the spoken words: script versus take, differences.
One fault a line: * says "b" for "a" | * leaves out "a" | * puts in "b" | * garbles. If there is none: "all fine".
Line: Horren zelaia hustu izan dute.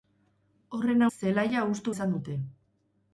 all fine